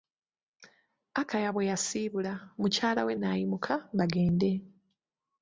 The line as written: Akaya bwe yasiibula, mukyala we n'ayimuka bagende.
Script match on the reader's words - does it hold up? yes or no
yes